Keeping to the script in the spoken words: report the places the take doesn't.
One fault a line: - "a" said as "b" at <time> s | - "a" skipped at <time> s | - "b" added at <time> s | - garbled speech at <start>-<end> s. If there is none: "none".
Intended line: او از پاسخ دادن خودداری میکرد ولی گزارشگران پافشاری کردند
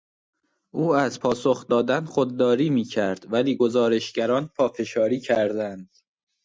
none